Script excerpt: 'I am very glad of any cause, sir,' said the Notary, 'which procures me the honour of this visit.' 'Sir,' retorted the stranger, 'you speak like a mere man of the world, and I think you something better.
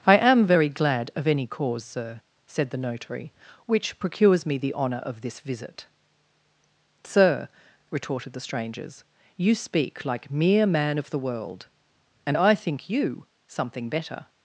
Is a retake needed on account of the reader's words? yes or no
yes